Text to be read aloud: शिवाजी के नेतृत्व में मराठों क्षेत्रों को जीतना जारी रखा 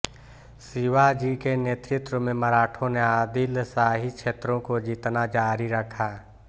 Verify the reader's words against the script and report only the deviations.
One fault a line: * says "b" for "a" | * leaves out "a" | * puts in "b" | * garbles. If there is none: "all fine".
* puts in "ने आदिलशाही"